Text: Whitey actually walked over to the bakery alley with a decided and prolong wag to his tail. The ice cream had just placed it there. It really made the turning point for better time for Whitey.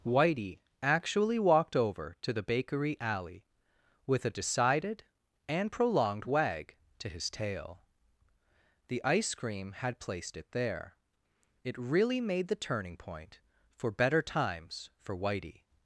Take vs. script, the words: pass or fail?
fail